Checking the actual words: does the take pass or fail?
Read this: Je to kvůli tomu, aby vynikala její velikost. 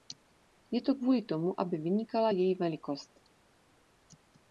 pass